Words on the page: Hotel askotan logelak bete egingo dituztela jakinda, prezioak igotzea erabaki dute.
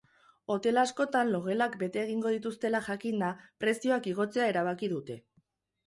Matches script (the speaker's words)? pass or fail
pass